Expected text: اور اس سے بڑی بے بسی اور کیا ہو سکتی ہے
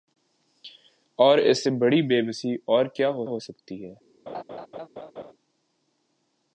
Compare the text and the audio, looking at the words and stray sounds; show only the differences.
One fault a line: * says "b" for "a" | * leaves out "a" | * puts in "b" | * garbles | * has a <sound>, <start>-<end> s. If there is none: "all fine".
* puts in "ہو"
* has a laugh, 4.3-5.3 s